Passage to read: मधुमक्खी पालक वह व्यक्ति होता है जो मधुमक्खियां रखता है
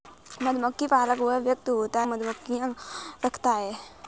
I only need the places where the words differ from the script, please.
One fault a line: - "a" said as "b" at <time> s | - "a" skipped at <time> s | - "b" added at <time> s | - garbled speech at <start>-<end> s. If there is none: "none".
- "है जो" skipped at 2.0 s